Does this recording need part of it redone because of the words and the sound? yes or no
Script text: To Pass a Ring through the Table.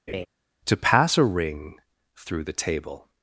yes